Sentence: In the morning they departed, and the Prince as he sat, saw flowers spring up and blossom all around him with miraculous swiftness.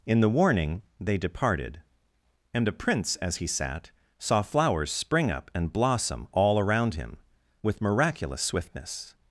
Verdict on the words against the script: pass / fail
fail